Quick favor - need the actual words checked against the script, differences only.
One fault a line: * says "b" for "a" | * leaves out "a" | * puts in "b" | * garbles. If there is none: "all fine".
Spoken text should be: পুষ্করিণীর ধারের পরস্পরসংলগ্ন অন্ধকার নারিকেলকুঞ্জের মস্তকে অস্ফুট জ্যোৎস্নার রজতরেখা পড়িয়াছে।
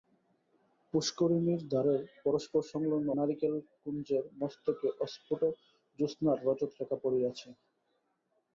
* leaves out "অন্ধকার"